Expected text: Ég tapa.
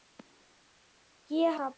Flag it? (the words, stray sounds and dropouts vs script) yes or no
no